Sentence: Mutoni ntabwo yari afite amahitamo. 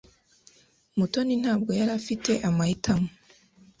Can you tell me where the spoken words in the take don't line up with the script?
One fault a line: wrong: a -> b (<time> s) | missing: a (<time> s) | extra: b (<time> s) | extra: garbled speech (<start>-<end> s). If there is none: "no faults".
no faults